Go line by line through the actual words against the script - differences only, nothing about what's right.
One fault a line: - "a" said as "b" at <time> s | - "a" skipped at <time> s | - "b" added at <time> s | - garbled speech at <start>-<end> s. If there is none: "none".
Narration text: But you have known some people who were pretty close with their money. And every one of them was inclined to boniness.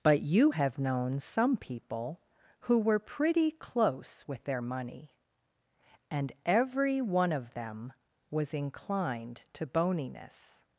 none